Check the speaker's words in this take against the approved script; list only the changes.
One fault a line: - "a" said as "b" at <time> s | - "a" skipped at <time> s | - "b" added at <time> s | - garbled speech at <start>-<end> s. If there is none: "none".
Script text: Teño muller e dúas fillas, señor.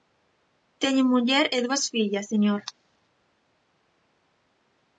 none